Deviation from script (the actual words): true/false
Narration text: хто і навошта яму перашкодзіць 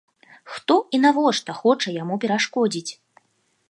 true